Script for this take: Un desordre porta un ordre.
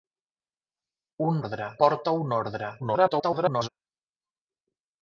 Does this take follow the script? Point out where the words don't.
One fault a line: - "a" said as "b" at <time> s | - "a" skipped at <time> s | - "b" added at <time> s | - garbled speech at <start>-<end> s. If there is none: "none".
- "desordre" said as "ordre" at 1.4 s
- garbled speech at 2.8-3.7 s